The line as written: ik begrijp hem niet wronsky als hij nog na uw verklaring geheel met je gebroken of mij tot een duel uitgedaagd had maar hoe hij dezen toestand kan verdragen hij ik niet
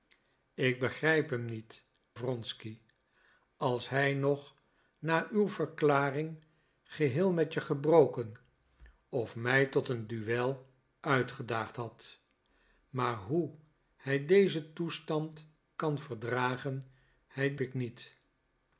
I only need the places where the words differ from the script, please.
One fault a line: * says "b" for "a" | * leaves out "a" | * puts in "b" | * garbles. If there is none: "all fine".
all fine